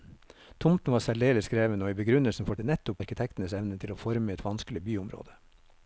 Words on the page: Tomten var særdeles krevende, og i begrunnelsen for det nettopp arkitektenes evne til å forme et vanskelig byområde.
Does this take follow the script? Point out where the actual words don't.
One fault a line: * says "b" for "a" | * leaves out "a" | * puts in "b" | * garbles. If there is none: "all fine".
all fine